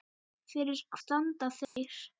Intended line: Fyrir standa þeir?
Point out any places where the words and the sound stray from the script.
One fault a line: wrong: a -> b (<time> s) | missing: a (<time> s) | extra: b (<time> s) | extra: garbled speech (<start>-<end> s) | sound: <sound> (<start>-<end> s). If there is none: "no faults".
sound: dropout (1.6-1.8 s)